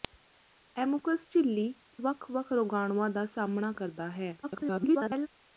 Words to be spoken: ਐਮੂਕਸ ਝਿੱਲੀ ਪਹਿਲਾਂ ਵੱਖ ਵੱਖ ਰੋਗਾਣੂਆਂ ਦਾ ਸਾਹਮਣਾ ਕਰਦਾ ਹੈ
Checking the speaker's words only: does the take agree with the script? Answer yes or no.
no